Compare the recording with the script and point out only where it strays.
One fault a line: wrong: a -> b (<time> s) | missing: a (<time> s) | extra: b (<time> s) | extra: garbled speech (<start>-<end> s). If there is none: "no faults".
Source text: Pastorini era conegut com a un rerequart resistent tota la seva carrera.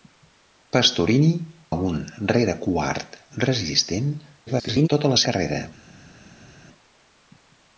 missing: era conegut com (1.3 s)
extra: garbled speech (4.5-4.9 s)
missing: seva (5.2 s)